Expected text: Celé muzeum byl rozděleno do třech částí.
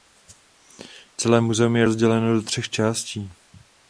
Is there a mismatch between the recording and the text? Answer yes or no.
yes